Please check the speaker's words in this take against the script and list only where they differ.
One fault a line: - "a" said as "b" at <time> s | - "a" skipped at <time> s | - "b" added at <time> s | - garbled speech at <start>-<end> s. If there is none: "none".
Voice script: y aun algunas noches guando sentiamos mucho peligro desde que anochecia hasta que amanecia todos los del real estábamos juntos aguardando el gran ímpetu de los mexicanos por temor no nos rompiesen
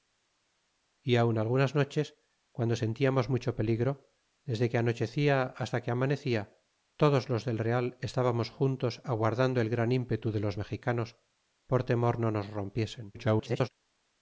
- garbled speech at 13.1-13.7 s